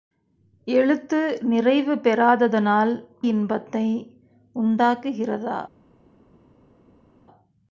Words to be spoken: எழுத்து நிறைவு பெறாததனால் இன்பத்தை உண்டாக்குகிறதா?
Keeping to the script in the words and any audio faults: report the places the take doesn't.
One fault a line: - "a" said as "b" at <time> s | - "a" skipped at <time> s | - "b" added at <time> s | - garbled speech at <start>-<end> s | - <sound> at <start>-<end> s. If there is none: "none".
none